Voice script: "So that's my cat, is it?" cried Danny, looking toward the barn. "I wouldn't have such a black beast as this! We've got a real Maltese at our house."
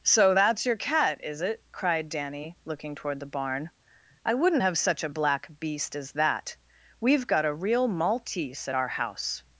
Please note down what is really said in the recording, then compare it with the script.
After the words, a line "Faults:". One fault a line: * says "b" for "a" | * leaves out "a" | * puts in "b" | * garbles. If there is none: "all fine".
"So that's your cat, is it?" cried Danny, looking toward the barn. "I wouldn't have such a black beast as that! We've got a real Maltese at our house."
Faults:
* says "your" for "my"
* says "that" for "this"